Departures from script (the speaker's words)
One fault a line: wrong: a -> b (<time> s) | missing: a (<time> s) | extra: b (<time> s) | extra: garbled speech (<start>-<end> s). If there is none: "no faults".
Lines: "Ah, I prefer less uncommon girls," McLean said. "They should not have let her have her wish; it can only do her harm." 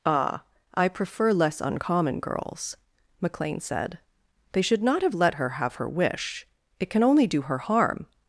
no faults